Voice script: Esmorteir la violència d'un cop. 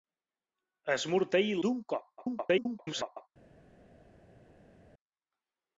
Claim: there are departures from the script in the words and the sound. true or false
true